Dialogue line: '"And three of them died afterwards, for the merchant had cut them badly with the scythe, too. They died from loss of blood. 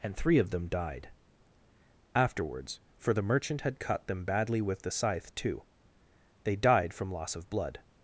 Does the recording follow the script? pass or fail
pass